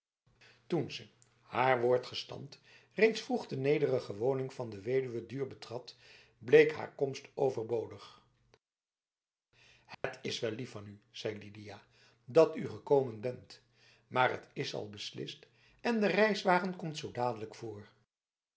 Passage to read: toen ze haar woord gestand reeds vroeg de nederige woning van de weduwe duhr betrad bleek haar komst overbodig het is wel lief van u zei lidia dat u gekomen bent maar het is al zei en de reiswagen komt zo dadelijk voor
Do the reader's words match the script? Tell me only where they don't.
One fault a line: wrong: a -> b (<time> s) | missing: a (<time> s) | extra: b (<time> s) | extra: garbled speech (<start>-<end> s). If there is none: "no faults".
wrong: zei -> beslist (14.9 s)